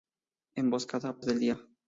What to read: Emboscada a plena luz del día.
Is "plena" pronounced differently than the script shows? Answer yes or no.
yes